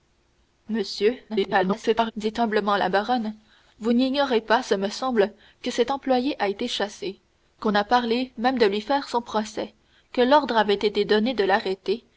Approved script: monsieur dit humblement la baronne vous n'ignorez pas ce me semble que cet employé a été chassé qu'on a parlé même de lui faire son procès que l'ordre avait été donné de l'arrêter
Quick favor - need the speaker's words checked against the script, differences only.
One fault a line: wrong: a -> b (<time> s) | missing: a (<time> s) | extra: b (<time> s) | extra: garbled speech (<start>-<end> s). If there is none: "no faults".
extra: garbled speech (1.3-2.1 s)